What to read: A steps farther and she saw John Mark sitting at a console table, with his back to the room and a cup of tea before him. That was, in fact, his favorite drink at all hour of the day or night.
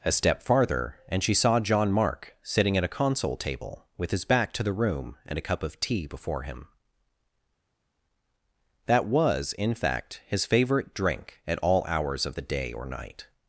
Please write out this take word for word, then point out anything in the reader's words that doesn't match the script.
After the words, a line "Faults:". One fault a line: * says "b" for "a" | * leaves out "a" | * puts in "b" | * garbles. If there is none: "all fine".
A step farther and she saw John Mark sitting at a console table, with his back to the room and a cup of tea before him. That was, in fact, his favorite drink at all hours of the day or night.
Faults:
* says "step" for "steps"
* says "hours" for "hour"